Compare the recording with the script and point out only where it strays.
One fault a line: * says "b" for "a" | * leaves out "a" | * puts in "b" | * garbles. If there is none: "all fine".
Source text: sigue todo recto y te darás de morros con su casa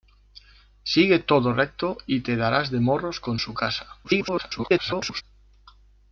* garbles